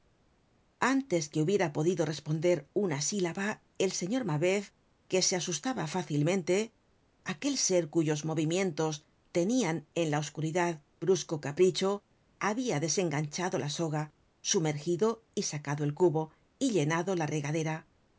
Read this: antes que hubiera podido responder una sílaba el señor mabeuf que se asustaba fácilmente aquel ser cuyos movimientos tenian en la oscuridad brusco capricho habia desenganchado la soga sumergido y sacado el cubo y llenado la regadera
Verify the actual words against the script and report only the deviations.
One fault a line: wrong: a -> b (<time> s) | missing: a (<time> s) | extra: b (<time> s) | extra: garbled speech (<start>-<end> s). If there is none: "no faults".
no faults